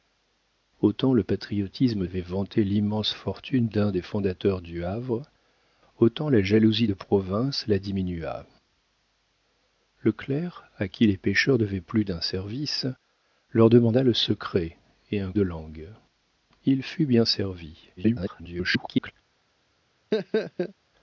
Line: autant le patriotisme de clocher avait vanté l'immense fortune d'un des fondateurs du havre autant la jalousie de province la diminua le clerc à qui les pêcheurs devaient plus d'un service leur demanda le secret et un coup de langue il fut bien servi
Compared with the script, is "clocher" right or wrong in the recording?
wrong